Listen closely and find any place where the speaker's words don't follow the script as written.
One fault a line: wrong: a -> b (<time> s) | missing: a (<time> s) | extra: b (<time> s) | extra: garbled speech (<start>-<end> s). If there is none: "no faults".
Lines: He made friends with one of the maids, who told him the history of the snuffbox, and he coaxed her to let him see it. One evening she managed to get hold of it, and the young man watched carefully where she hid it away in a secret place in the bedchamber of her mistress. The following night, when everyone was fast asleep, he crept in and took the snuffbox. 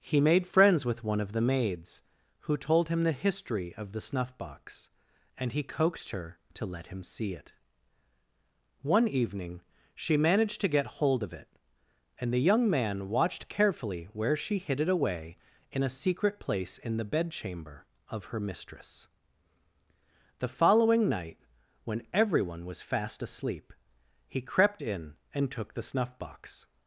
no faults